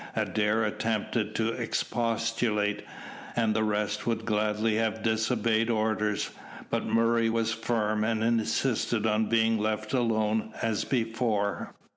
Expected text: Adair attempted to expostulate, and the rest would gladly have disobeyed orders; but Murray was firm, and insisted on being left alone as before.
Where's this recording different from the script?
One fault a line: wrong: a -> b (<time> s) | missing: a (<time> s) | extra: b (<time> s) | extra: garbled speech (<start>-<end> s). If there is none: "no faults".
no faults